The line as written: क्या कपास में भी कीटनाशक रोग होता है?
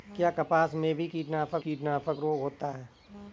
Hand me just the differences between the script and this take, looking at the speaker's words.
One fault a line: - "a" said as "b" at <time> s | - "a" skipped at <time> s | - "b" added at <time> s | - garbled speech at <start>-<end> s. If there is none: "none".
- "कीटनाशक" added at 1.6 s